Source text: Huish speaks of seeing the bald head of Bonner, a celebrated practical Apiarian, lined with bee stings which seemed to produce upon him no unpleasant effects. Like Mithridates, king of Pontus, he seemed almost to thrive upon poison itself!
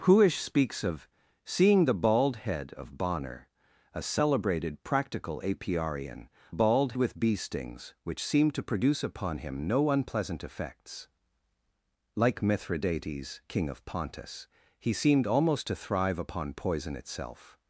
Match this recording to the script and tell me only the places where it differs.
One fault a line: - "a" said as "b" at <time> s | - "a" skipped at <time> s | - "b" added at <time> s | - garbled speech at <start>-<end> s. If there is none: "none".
- "lined" said as "bald" at 6.5 s